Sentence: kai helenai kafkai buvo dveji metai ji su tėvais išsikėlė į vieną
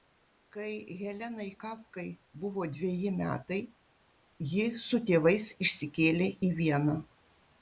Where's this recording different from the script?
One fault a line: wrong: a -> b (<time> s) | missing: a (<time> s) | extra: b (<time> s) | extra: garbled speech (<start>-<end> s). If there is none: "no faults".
no faults